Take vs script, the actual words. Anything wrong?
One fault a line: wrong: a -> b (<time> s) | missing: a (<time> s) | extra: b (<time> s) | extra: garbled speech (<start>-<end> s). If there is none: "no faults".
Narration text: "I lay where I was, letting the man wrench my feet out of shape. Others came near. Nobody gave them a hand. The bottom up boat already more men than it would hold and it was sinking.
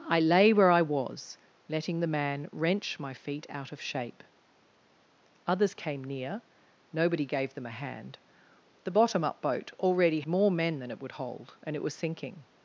no faults